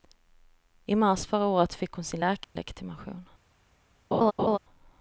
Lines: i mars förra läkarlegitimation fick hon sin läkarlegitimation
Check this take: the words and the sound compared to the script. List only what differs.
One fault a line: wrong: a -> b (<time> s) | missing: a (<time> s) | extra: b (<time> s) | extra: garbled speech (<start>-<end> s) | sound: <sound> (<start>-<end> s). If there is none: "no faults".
wrong: läkarlegitimation -> året (1.4 s)
sound: dropout (2.4-2.6 s)
sound: laugh (4.1-4.6 s)